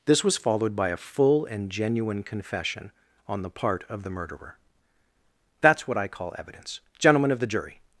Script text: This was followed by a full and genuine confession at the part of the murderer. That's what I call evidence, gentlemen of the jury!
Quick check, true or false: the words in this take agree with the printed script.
false